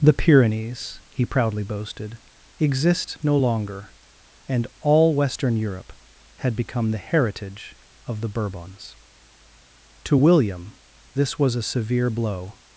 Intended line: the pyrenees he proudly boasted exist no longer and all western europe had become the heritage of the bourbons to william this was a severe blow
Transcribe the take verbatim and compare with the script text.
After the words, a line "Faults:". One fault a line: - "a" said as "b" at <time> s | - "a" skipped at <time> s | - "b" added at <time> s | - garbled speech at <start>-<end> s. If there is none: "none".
the pyrenees he proudly boasted exist no longer and all western europe had become the heritage of the bourbons to william this was a severe blow
Faults:
none